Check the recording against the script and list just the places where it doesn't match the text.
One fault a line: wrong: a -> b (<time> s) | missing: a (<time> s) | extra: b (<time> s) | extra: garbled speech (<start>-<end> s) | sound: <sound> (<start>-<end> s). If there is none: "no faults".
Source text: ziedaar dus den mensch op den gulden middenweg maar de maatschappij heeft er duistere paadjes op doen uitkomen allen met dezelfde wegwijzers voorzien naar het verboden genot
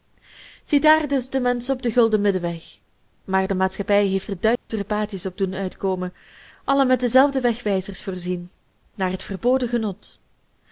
sound: dropout (4.6-4.7 s)